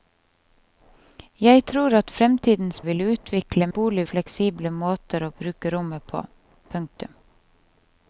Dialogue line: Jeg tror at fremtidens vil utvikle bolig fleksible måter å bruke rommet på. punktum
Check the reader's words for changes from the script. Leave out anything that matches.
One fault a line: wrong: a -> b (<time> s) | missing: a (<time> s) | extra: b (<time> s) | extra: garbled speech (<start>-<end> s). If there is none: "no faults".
no faults